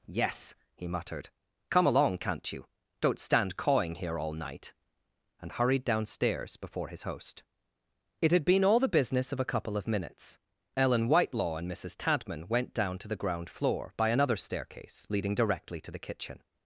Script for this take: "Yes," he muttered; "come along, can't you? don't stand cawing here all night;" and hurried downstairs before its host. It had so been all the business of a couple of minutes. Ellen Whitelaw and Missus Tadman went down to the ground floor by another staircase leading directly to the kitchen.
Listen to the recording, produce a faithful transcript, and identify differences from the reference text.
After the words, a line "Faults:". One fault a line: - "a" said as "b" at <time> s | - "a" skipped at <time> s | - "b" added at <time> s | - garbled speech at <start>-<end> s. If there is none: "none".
"Yes," he muttered; "come along, can't you? don't stand cawing here all night;" and hurried downstairs before his host. It had been all the business of a couple of minutes. Ellen Whitelaw and Missus Tadman went down to the ground floor by another staircase leading directly to the kitchen.
Faults:
- "its" said as "his" at 6.9 s
- "so" skipped at 8.4 s